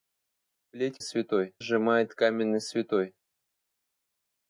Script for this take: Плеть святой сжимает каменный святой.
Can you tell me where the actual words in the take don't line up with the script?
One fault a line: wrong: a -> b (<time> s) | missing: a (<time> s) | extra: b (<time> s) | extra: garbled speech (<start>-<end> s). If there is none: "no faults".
no faults